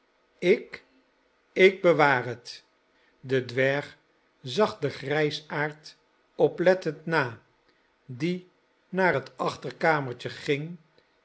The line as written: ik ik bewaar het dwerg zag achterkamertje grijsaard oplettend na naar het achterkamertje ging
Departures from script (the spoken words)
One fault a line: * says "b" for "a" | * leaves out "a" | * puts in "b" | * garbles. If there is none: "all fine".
* puts in "de"
* says "den" for "achterkamertje"
* puts in "die"